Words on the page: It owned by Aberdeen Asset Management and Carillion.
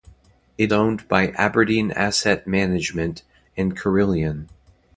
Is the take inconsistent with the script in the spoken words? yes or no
no